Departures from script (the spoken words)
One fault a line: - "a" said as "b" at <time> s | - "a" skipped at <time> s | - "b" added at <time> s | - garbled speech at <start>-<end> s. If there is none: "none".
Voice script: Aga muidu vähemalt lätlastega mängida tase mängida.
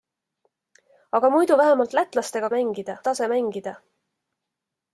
none